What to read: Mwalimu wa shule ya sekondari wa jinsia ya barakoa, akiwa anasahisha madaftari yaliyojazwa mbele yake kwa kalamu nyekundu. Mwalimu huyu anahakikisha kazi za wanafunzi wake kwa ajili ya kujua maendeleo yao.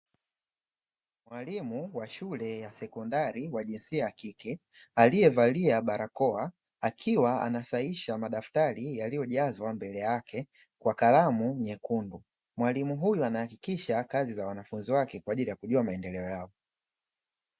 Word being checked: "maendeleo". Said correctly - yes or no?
yes